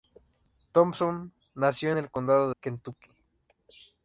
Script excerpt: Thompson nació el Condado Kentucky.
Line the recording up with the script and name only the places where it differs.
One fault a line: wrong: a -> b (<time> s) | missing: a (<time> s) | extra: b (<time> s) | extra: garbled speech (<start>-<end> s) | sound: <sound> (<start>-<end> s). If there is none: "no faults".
no faults